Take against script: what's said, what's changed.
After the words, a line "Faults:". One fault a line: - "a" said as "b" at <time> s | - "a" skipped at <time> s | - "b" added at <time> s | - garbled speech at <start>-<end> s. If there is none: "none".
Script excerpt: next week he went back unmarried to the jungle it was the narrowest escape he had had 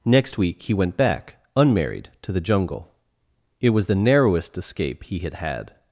next week he went back unmarried to the jungle it was the narrowest escape he had had
Faults:
none